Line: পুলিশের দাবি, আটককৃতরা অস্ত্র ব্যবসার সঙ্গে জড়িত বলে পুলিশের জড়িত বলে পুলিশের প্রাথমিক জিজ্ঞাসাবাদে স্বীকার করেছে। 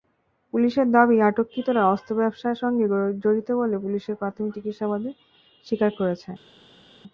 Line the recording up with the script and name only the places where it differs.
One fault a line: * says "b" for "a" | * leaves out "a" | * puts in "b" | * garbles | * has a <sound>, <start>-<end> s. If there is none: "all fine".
* leaves out "জড়িত বলে পুলিশের"